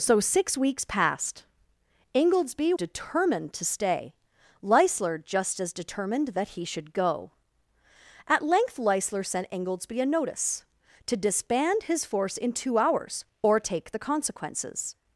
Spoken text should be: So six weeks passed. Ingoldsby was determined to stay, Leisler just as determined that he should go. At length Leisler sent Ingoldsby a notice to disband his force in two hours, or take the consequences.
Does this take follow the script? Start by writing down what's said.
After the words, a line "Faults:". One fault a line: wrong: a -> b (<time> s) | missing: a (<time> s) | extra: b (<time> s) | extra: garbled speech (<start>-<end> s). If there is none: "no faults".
So six weeks passed. Ingoldsby determined to stay, Leisler just as determined that he should go. At length Leisler sent Ingoldsby a notice to disband his force in two hours, or take the consequences.
Faults:
missing: was (2.7 s)